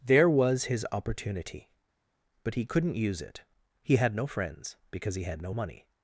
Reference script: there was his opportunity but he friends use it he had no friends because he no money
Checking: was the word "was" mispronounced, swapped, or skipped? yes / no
no